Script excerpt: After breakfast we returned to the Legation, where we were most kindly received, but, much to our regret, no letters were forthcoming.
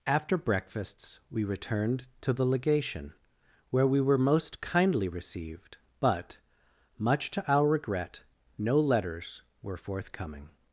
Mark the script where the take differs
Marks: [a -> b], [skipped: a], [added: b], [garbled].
After [breakfast -> breakfasts] we returned to the Legation, where we were most kindly received, but, much to our regret, no letters were forthcoming.